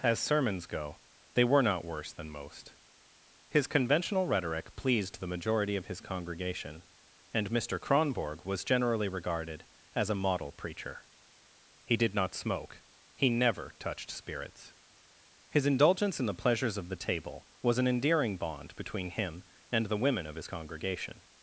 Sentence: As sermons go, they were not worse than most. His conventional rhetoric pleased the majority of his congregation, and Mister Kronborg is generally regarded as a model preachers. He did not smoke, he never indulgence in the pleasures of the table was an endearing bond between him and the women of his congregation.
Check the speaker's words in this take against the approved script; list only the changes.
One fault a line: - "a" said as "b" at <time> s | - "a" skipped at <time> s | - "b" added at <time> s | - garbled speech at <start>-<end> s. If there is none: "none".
- "is" said as "was" at 8.4 s
- "preachers" said as "preacher" at 10.5 s
- "touched spirits His" added at 13.8 s